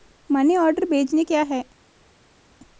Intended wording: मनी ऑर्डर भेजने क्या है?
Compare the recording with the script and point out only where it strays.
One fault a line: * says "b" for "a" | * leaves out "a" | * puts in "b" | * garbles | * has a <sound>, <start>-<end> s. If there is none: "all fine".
all fine